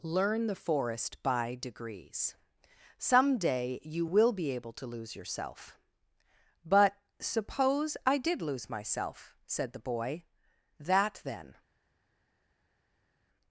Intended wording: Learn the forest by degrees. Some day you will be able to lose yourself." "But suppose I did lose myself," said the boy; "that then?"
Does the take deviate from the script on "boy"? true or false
false